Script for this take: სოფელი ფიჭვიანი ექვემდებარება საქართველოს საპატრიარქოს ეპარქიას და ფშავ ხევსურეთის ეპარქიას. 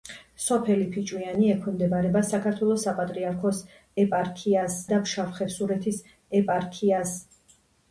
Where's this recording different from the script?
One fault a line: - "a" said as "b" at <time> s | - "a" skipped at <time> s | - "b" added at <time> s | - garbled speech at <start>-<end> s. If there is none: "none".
none